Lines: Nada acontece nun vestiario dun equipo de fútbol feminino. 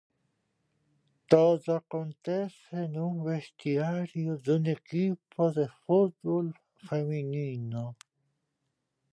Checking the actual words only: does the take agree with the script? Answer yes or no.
no